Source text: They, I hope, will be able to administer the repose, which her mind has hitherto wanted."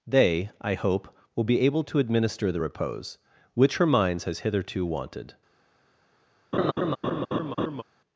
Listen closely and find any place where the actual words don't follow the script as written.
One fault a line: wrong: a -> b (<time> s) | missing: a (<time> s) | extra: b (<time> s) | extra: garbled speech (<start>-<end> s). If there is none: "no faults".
wrong: mind -> minds (3.9 s)